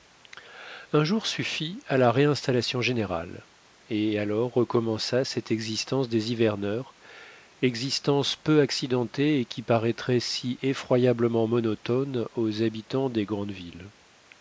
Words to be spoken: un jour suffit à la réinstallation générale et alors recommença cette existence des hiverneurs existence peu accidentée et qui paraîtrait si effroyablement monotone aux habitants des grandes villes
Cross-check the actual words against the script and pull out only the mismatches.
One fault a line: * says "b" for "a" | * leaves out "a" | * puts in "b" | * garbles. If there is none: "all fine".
all fine